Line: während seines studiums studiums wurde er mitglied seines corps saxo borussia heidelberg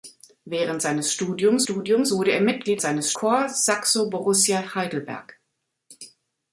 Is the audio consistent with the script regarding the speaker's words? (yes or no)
yes